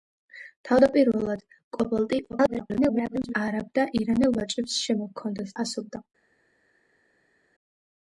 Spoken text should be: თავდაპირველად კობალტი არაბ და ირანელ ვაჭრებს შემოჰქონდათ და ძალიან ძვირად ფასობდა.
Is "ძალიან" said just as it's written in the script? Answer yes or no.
no